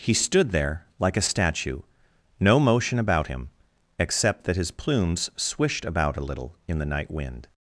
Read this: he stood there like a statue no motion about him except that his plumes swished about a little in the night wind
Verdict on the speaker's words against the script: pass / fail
pass